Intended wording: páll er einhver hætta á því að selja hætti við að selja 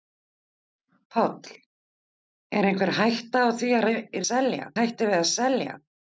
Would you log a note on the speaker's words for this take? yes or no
no